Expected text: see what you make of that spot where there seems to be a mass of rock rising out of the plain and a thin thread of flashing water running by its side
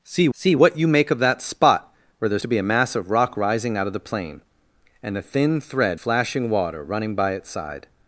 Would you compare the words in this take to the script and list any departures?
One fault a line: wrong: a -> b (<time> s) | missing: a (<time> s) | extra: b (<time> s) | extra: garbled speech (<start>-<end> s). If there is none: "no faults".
extra: see (0.3 s)
missing: seems (2.4 s)
missing: of (6.0 s)